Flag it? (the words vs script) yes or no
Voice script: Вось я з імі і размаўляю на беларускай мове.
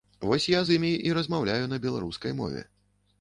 no